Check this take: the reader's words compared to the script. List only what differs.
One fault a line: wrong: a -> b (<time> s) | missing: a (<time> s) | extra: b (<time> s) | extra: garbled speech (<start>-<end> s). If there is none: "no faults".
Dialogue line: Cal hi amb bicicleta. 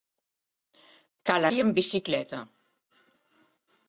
no faults